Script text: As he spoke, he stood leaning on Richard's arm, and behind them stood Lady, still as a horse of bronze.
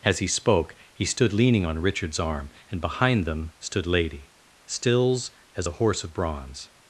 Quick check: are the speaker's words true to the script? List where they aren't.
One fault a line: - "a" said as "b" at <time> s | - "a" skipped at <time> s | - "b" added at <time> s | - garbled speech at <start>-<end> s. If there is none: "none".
- "still" said as "stills" at 4.7 s